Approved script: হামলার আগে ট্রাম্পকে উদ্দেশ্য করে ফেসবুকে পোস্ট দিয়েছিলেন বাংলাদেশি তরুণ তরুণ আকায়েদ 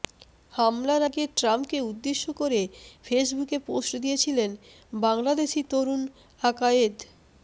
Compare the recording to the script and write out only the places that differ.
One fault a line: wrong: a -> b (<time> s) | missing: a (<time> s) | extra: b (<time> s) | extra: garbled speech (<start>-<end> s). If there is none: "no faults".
missing: তরুণ (6.0 s)